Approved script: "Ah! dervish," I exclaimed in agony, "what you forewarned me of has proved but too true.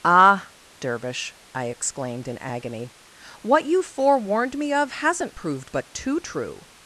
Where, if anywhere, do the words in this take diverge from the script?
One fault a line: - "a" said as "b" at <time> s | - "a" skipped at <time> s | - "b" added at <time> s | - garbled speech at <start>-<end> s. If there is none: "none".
- "has" said as "hasn't" at 4.9 s